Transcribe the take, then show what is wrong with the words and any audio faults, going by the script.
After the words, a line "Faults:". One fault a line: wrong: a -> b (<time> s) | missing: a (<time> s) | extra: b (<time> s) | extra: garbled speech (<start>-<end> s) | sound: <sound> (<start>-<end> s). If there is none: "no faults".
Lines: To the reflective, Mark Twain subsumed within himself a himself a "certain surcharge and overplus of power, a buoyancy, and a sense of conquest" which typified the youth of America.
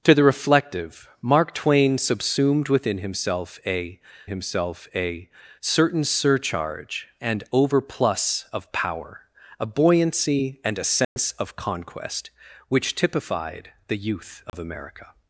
To the reflective, Mark Twain subsumed within himself a himself a "certain surcharge and overplus of power, a buoyancy, and a sense of conquest" which typified the youth of America.
Faults:
sound: dropout (11.0-11.2 s)
sound: dropout (14.5-14.5 s)